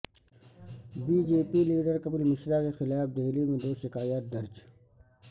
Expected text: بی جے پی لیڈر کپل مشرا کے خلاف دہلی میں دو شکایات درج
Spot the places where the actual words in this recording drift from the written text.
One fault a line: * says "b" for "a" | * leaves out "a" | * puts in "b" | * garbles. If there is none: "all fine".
all fine